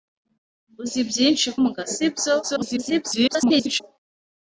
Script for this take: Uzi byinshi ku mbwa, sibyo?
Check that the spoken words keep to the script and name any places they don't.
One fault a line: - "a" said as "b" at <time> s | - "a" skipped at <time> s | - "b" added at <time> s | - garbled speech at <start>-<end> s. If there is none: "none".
- "ku" skipped at 1.5 s
- garbled speech at 2.4-3.8 s